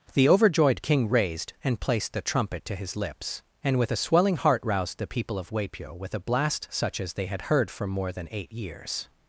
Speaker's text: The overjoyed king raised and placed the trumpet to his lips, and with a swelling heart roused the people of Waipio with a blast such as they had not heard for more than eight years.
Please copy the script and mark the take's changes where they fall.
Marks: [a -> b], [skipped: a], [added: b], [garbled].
The overjoyed king raised and placed the trumpet to his lips, and with a swelling heart roused the people of Waipio with a blast such as they had [skipped: not] heard for more than eight years.